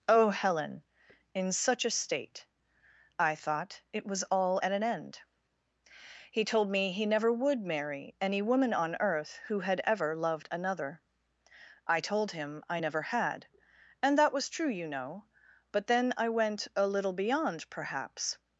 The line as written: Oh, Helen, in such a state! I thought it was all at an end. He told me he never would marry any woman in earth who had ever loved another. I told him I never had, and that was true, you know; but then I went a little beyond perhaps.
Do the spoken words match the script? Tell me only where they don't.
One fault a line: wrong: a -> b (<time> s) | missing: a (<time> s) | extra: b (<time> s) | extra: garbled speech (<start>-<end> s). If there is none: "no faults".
wrong: in -> on (8.7 s)